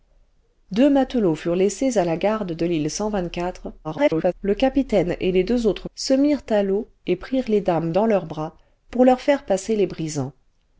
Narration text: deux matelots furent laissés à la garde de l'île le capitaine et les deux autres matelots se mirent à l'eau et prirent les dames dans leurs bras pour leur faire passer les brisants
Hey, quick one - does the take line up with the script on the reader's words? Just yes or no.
no